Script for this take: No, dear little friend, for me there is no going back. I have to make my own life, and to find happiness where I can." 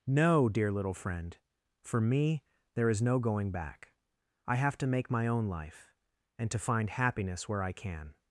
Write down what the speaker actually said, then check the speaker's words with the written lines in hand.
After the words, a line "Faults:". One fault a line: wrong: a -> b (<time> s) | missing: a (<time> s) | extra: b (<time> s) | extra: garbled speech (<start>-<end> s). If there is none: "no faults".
No, dear little friend, for me there is no going back. I have to make my own life, and to find happiness where I can."
Faults:
no faults